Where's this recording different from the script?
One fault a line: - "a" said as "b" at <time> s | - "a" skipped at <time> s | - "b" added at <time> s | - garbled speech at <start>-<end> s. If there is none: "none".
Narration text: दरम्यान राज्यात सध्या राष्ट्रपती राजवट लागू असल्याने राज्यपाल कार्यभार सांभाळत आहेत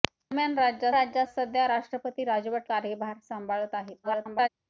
- "राज्यात" added at 0.9 s
- "लागू असल्याने राज्यपाल" skipped at 2.7 s
- garbled speech at 4.0-4.5 s